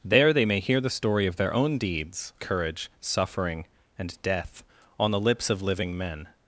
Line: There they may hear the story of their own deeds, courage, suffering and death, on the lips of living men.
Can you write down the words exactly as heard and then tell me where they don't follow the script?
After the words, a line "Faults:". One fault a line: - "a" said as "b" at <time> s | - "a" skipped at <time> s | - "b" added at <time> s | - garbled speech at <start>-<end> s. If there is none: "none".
There they may hear the story of their own deeds, courage, suffering and death, on the lips of living men.
Faults:
none